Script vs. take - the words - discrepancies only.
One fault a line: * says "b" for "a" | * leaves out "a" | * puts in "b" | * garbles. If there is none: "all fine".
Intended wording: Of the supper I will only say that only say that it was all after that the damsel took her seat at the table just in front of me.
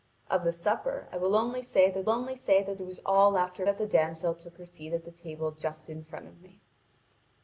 all fine